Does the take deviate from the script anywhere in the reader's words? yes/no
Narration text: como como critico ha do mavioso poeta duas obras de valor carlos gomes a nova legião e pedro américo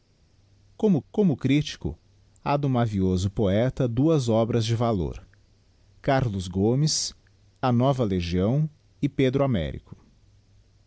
no